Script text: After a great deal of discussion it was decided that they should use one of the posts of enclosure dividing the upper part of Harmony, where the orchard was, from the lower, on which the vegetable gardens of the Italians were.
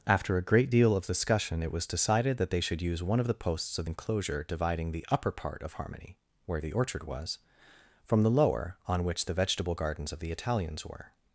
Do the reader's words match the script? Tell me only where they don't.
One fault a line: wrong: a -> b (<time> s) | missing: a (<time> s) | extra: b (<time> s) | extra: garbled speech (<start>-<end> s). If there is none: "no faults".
no faults